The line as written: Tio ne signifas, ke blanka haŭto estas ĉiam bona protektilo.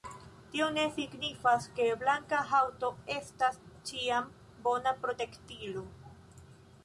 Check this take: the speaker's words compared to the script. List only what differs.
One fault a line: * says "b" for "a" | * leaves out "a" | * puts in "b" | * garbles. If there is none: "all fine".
all fine